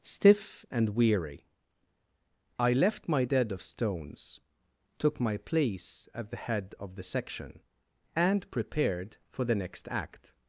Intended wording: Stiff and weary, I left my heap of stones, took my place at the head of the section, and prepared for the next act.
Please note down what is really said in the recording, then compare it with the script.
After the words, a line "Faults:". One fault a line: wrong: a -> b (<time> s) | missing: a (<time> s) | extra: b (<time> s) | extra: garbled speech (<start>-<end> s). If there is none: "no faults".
Stiff and weary, I left my dead of stones, took my place at the head of the section, and prepared for the next act.
Faults:
wrong: heap -> dead (3.2 s)